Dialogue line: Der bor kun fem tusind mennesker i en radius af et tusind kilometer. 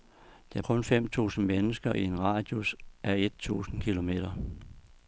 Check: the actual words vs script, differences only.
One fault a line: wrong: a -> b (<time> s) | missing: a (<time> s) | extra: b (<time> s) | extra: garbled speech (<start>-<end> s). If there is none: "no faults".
missing: bor (0.6 s)